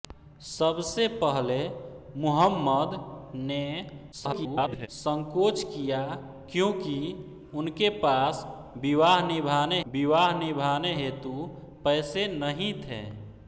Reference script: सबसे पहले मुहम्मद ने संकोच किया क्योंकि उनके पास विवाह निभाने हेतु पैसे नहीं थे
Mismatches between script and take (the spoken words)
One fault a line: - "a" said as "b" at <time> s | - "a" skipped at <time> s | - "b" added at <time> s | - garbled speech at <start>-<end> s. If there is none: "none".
- garbled speech at 4.1-4.9 s
- "विवाह निभाने" added at 9.9 s